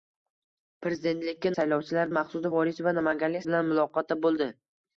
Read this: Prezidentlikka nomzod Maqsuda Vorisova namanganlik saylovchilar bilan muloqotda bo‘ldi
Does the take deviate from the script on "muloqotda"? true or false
false